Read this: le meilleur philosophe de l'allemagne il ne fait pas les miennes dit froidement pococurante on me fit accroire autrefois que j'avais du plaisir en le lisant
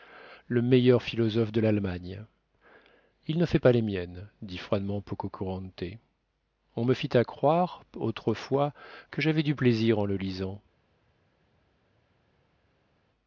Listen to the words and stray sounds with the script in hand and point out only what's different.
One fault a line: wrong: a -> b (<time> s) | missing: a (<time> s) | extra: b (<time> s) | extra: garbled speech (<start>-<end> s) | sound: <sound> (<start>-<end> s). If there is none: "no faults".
no faults